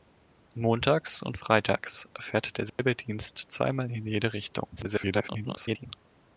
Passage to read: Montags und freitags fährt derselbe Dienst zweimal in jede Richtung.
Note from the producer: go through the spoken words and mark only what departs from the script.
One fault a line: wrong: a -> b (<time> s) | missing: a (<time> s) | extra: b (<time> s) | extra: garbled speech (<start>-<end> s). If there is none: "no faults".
extra: garbled speech (4.8-5.9 s)